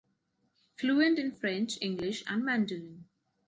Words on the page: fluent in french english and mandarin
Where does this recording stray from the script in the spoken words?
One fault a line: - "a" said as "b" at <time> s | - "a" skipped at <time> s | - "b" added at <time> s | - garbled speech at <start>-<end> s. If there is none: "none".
none